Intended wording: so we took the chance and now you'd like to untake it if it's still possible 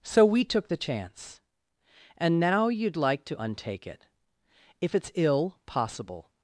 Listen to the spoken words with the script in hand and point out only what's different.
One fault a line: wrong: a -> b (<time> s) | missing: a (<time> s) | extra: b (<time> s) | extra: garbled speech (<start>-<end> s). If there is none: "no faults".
wrong: still -> ill (5.2 s)